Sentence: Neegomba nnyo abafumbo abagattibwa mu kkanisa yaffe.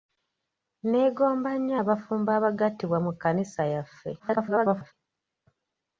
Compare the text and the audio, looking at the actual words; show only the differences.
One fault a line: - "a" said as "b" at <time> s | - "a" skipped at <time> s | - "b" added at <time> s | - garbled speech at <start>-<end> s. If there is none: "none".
- garbled speech at 4.2-4.9 s